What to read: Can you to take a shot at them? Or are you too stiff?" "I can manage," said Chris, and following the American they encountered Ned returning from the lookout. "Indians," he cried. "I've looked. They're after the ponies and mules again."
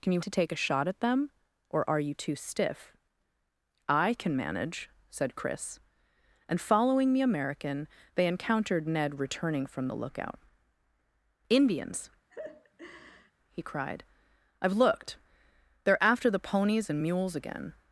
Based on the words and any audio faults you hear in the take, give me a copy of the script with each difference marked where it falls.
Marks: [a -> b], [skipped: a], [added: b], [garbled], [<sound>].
Can you to take a shot at them? Or are you too stiff?" "I can manage," said Chris, and following the American they encountered Ned returning from the lookout. "Indians," [laugh] he cried. "I've looked. They're after the ponies and mules again."